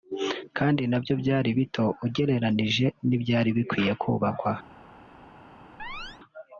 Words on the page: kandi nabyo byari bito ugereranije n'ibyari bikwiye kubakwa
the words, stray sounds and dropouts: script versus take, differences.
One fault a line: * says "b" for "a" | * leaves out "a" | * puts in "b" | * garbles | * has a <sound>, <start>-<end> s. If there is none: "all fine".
* has a chirp, 5.8-6.2 s